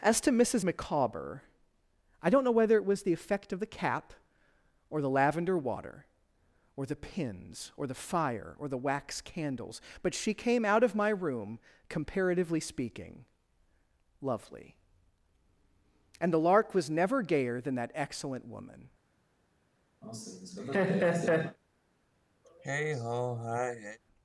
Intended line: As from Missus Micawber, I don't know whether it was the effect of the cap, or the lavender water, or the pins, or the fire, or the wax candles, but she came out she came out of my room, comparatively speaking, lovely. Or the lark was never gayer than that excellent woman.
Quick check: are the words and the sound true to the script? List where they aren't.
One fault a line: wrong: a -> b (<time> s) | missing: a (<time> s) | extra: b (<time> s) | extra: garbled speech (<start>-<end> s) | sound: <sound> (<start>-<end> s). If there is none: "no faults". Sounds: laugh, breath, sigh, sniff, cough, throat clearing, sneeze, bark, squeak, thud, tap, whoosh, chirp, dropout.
wrong: from -> to (0.2 s)
missing: she came out (10.8 s)
wrong: Or -> And (16.2 s)
sound: laugh (20.0-21.6 s)
sound: sigh (22.4-24.0 s)